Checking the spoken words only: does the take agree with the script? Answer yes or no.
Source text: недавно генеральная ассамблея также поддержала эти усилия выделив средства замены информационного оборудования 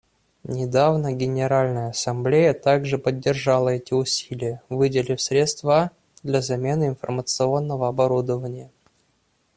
no